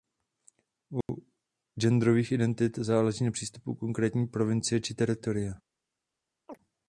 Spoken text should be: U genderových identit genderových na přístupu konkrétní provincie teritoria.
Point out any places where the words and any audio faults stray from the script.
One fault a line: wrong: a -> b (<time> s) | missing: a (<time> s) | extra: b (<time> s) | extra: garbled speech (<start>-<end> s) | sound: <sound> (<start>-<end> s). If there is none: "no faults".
sound: dropout (1.0-1.1 s)
wrong: genderových -> záleží (2.8 s)
extra: či (4.8 s)
sound: chirp (6.5-6.6 s)